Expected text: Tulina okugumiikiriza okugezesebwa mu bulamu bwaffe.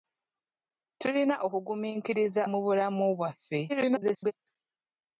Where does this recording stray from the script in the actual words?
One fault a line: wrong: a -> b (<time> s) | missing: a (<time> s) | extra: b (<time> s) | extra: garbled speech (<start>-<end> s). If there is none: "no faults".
missing: okugezesebwa (2.4 s)
extra: garbled speech (3.7-4.3 s)